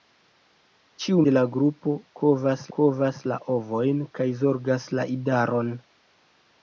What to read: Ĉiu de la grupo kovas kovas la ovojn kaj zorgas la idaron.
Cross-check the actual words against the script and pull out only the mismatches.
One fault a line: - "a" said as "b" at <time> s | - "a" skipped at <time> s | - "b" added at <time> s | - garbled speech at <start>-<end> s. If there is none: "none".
none